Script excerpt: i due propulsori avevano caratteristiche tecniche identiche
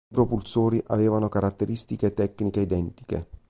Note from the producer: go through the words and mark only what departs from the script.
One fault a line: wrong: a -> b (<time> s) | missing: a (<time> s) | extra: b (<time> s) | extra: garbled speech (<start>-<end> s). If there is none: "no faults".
missing: due (0.1 s)